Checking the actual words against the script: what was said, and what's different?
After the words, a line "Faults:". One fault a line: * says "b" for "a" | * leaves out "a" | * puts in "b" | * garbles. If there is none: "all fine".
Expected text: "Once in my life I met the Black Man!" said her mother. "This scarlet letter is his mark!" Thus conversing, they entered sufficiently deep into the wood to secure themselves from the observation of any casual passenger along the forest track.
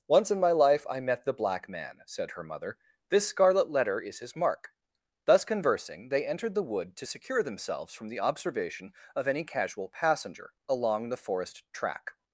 "Once in my life I met the Black Man!" said her mother. "This scarlet letter is his mark!" Thus conversing, they entered the wood to secure themselves from the observation of any casual passenger along the forest track.
Faults:
* leaves out "sufficiently deep into"